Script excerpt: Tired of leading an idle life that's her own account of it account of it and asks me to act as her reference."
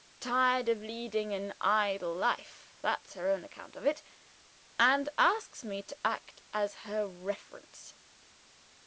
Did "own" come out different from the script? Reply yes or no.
no